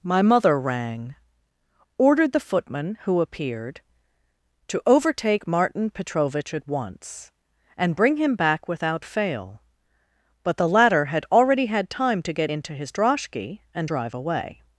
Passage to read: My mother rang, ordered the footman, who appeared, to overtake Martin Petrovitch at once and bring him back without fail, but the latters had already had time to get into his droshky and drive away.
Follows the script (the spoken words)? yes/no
no